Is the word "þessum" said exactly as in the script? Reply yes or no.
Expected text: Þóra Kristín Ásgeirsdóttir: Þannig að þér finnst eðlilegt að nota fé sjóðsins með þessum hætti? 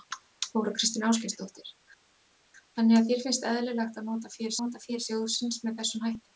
yes